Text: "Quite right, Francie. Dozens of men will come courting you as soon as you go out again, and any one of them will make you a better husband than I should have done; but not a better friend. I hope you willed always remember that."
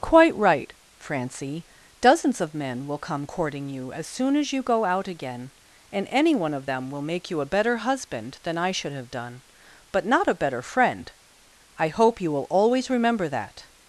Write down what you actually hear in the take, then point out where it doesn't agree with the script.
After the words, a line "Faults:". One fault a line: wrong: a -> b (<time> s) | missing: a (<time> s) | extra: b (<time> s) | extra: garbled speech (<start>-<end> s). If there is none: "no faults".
"Quite right, Francie. Dozens of men will come courting you as soon as you go out again, and any one of them will make you a better husband than I should have done; but not a better friend. I hope you will always remember that."
Faults:
wrong: willed -> will (12.3 s)